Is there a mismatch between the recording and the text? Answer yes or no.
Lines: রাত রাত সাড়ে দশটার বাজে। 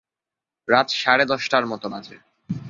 yes